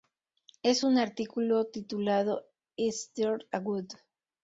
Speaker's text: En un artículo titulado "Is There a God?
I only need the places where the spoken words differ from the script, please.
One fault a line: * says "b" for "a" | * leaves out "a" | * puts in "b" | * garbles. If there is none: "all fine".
all fine